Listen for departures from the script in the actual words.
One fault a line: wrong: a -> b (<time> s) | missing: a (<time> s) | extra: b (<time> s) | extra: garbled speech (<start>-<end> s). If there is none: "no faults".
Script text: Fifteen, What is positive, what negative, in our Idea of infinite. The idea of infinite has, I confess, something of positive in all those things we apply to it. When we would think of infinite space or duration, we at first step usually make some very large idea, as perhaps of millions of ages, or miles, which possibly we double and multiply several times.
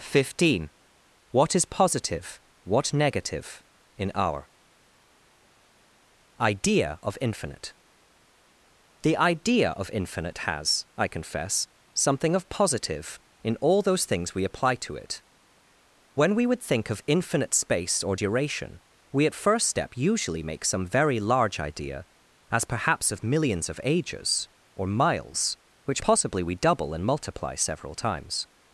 no faults